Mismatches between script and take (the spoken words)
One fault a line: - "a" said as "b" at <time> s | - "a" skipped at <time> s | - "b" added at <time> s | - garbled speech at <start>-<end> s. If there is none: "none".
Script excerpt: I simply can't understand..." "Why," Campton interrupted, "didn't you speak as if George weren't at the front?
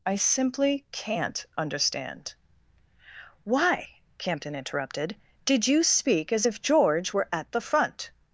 - "didn't" said as "did" at 5.5 s
- "weren't" said as "were" at 7.1 s